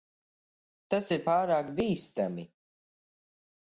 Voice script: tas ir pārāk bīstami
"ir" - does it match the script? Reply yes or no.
yes